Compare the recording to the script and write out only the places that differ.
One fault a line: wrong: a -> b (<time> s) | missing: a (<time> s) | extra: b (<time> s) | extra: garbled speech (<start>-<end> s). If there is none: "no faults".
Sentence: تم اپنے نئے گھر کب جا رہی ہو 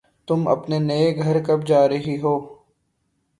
no faults